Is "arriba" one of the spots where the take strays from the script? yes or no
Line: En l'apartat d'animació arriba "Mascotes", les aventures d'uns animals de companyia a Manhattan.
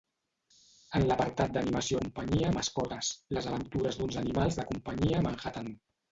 yes